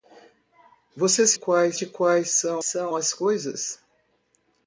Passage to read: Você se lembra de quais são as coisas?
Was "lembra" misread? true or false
true